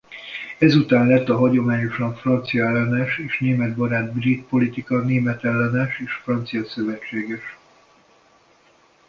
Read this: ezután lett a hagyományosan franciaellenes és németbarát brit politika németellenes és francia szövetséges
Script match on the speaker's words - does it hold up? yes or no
yes